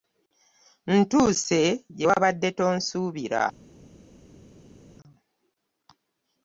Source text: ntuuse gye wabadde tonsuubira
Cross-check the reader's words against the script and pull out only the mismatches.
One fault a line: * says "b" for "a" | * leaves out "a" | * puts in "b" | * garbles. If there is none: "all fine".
all fine